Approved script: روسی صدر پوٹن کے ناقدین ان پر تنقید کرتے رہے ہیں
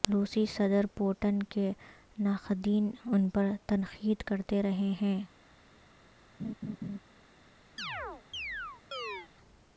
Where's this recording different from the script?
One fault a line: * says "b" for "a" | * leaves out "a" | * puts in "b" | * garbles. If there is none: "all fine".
all fine